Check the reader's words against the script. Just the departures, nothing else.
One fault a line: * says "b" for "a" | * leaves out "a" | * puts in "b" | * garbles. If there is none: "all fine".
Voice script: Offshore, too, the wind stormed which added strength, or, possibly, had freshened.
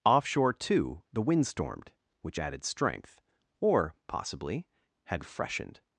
all fine